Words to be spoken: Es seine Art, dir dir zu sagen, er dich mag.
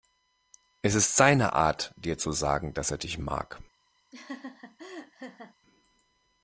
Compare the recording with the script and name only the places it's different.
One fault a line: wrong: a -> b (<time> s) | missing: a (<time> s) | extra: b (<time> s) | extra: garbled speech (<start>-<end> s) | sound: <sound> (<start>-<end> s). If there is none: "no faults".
extra: ist (0.9 s)
missing: dir (2.2 s)
extra: dass (2.7 s)
sound: laugh (4.1-5.5 s)